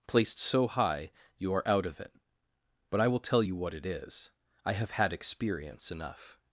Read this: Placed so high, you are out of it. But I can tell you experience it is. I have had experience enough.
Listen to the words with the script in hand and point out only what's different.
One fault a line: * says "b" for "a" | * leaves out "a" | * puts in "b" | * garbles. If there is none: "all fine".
* says "will" for "can"
* says "what" for "experience"